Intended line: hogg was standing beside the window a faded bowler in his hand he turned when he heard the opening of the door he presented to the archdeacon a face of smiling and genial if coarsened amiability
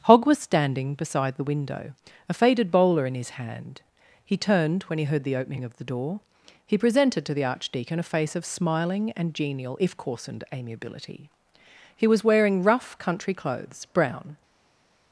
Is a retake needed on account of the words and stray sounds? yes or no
yes